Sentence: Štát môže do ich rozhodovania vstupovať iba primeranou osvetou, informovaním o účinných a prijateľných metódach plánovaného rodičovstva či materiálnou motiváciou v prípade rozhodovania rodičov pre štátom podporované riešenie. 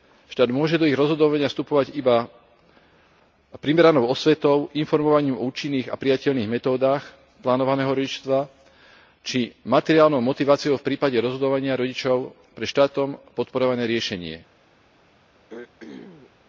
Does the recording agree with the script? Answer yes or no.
yes